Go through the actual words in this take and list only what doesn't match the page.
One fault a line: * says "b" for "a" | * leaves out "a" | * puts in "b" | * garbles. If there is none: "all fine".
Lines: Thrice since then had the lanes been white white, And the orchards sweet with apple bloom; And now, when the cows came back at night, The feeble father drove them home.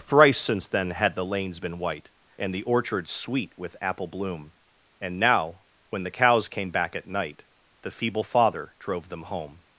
* leaves out "white"